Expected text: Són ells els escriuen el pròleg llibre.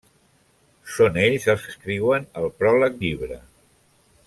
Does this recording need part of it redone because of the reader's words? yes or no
no